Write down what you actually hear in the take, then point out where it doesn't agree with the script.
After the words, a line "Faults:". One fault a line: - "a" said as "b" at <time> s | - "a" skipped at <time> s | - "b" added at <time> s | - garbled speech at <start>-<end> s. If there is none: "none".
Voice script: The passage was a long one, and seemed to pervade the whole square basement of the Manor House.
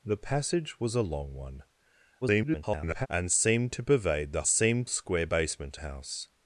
The passage was a long one, [garbled] and seemed to pervade the seemed square basement House.
Faults:
- garbled speech at 2.2-3.1 s
- "whole" said as "seemed" at 4.5 s
- "of the Manor" skipped at 5.8 s